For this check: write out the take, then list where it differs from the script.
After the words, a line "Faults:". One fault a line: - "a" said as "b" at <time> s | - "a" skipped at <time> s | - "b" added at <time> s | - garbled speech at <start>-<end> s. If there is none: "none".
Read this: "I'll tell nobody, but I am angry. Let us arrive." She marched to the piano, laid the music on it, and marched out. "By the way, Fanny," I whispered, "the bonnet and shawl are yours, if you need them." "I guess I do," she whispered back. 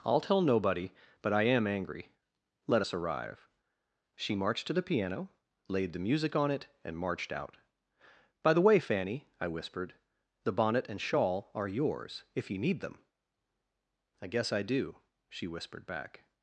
"I'll tell nobody, but I am angry. Let us arrive." She marched to the piano, laid the music on it, and marched out. "By the way, Fanny," I whispered, "the bonnet and shawl are yours, if you need them." "I guess I do," she whispered back.
Faults:
none